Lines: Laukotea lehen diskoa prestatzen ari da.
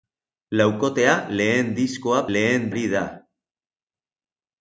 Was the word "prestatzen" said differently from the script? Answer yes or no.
yes